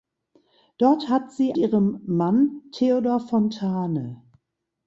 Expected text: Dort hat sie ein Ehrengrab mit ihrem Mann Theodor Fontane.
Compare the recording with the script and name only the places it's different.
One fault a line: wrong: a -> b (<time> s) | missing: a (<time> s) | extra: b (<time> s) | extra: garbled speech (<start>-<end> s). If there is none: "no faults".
missing: ein Ehrengrab mit (1.5 s)